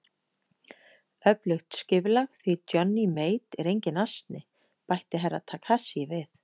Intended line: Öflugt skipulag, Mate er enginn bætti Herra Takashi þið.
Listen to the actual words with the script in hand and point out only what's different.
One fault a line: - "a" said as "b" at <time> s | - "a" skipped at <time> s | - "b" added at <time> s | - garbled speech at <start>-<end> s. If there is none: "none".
- "því Johnny" added at 2.4 s
- "asni" added at 4.1 s
- "þið" said as "við" at 6.2 s